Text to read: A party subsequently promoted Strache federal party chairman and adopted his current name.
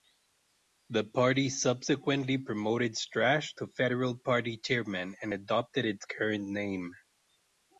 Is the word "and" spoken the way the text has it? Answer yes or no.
yes